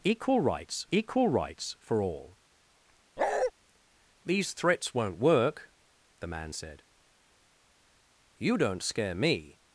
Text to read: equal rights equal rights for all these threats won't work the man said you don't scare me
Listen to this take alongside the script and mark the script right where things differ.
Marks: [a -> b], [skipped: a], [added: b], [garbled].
equal rights equal rights for all these threats won't work the man said you don't scare me